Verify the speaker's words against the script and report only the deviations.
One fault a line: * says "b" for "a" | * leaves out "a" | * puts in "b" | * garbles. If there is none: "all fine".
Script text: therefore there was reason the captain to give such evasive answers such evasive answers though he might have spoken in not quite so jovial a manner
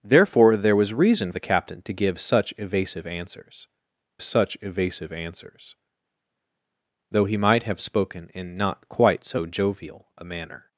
all fine